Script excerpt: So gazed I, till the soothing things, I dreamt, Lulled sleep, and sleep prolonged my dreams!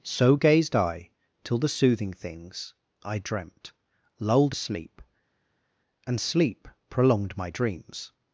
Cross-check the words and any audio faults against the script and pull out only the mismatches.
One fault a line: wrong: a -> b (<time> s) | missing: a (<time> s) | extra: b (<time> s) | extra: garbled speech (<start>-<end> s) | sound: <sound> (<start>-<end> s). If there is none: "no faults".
no faults